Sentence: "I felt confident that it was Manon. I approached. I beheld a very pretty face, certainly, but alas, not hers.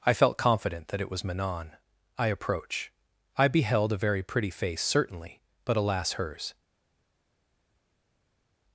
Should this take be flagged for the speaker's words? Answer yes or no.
yes